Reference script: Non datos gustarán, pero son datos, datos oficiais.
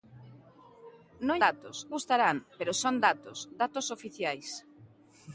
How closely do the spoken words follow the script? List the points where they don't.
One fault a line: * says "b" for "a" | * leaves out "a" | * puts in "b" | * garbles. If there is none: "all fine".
all fine